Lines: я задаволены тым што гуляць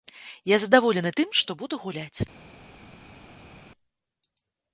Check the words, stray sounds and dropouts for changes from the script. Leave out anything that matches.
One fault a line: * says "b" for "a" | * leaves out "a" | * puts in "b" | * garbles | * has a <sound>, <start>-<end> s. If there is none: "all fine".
* puts in "буду"